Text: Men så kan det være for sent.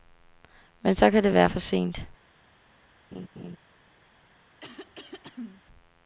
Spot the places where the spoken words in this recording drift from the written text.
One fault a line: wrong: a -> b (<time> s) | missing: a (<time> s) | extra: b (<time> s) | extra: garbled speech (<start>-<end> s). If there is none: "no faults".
no faults